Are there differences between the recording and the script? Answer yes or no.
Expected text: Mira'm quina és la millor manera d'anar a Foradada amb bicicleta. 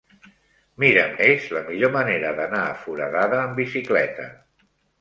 yes